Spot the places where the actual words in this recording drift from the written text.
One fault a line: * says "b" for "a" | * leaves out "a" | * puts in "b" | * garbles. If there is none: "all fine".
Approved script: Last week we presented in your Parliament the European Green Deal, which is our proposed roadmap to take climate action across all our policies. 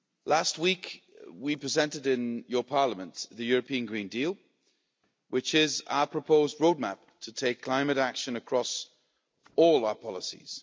all fine